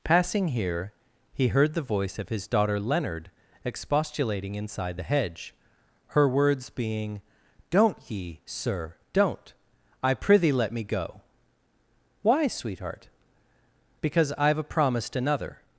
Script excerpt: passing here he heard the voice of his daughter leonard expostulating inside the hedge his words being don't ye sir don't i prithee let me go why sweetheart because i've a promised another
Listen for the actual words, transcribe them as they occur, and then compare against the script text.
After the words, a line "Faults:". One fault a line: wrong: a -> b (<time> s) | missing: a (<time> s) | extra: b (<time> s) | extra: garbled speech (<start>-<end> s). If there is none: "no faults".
passing here he heard the voice of his daughter leonard expostulating inside the hedge her words being don't ye sir don't i prithee let me go why sweetheart because i've a promised another
Faults:
wrong: his -> her (6.1 s)